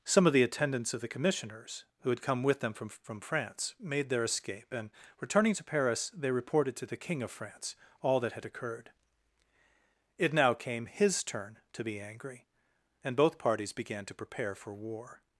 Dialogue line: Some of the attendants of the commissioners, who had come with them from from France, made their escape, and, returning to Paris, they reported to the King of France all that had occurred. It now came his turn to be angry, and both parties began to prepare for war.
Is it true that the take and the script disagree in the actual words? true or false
false